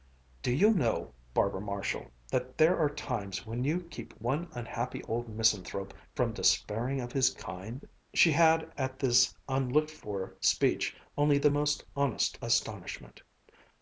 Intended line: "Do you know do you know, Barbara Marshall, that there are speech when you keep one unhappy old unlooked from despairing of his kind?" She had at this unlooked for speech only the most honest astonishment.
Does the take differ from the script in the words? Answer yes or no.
yes